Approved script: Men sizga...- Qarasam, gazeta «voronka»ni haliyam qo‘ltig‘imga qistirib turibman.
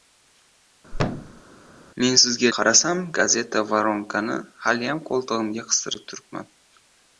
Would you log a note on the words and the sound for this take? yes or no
yes